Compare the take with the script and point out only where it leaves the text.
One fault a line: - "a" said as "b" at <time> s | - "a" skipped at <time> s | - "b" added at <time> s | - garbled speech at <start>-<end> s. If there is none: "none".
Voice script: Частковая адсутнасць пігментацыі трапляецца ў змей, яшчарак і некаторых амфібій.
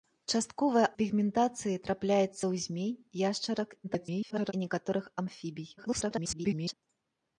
- "адсутнасць" skipped at 0.9 s
- garbled speech at 3.8-4.5 s
- garbled speech at 5.8-6.7 s